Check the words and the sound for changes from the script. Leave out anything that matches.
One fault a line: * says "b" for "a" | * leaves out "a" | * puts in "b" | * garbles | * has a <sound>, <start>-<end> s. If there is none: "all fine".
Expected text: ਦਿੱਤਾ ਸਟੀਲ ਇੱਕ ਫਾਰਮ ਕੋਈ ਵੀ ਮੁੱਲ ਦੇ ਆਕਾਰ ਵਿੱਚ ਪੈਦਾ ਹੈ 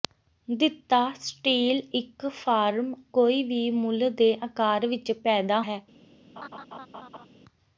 * has a laugh, 6.4-7.3 s